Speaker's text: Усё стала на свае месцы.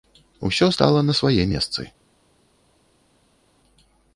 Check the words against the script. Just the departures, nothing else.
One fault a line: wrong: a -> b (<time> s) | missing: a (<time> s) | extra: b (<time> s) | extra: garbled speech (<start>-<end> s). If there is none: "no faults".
no faults